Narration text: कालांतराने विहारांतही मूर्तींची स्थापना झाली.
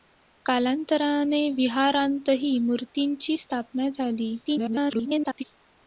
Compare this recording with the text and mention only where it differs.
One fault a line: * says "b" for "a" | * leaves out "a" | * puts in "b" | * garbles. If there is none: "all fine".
* garbles